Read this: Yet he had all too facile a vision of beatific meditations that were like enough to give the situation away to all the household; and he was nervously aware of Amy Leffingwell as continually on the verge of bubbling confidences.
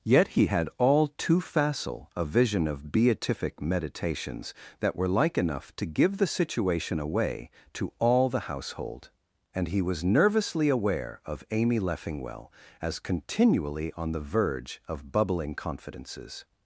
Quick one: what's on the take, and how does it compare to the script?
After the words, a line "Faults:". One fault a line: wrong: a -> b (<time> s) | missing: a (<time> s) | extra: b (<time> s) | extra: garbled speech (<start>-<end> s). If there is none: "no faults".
Yet he had all too facile a vision of beatific meditations that were like enough to give the situation away to all the household; and he was nervously aware of Amy Leffingwell as continually on the verge of bubbling confidences.
Faults:
no faults